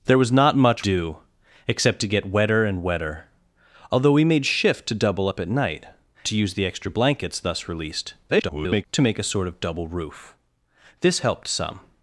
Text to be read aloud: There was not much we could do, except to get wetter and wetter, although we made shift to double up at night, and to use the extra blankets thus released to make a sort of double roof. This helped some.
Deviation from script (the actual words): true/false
true